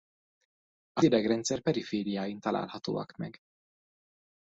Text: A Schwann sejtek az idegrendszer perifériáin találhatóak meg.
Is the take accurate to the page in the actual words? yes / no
no